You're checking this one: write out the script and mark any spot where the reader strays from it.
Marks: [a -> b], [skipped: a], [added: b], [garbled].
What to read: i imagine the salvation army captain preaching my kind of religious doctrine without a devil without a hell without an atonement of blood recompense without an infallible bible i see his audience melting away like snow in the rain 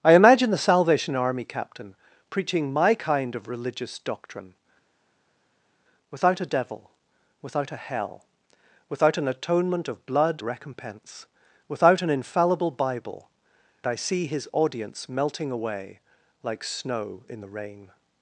i imagine the salvation army captain preaching my kind of religious doctrine without a devil without a hell without an atonement of blood recompense without an infallible bible i see his audience melting away like snow in the rain